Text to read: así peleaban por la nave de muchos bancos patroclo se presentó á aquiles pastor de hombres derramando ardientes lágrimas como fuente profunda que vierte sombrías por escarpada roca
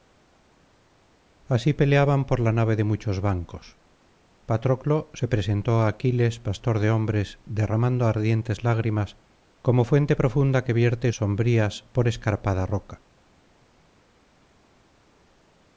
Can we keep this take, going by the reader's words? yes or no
yes